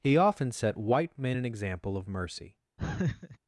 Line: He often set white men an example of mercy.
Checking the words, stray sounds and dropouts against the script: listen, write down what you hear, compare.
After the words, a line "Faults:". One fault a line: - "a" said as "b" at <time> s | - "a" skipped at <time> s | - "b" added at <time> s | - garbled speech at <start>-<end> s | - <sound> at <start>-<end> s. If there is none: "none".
He often set white men an example of mercy.
Faults:
- laugh at 2.8-3.4 s